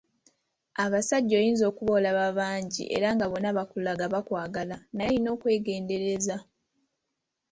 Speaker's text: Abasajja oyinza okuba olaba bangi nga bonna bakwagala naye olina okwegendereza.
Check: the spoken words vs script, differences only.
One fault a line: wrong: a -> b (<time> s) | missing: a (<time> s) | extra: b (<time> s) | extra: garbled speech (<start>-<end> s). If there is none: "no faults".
extra: era (3.0 s)
extra: bakulaga (3.6 s)